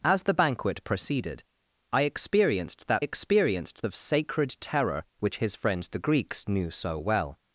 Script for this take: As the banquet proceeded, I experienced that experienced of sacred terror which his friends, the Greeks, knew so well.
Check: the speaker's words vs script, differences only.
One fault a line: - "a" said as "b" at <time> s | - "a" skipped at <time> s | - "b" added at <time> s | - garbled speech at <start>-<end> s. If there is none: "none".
none